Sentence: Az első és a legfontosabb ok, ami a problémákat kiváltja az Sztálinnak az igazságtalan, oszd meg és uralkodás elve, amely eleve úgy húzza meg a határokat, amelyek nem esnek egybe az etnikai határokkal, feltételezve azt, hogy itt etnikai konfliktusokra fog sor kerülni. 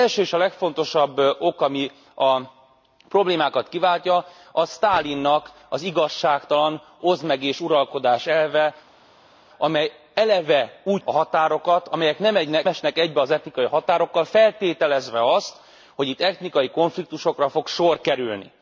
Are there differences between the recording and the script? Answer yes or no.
yes